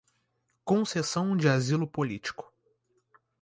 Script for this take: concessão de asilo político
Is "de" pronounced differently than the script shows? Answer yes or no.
no